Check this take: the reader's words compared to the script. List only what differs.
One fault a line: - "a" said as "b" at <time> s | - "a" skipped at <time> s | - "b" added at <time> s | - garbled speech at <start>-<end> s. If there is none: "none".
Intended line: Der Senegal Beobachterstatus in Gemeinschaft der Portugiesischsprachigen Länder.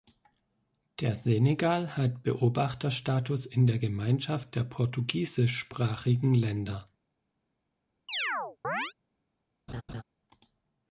- "hat" added at 2.0 s
- "der" added at 3.7 s